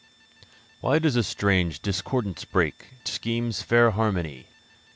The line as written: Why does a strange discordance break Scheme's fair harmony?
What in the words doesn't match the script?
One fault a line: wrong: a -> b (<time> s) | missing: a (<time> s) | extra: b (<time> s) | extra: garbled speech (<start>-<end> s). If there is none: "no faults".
no faults